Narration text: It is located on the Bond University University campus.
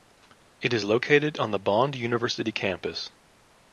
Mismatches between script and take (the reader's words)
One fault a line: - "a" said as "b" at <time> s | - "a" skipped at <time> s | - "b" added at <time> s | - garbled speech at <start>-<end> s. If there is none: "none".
- "University" skipped at 2.5 s